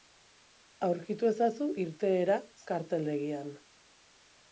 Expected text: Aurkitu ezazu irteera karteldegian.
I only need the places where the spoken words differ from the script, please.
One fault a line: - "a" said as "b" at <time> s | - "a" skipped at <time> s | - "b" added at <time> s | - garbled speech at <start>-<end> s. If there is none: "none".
none